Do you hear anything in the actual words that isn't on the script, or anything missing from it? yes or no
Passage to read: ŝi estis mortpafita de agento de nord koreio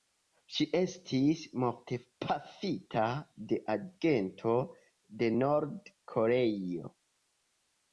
no